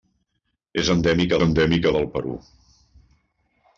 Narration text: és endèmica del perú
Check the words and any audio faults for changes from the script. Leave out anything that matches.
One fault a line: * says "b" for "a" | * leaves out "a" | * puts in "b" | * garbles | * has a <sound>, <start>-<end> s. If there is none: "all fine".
* puts in "endèmica"